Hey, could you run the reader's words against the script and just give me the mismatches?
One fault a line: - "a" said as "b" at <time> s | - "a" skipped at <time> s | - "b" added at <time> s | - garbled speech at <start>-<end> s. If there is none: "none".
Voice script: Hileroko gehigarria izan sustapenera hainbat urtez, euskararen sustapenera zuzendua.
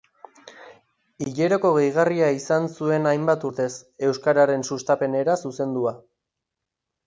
- "sustapenera" said as "zuen" at 2.8 s